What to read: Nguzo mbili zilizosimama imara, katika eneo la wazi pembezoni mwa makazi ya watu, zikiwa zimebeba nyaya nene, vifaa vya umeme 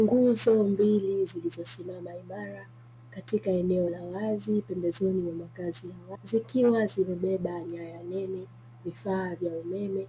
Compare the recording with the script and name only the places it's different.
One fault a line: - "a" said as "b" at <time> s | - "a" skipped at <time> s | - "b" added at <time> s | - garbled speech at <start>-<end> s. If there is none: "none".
- "watu" skipped at 6.1 s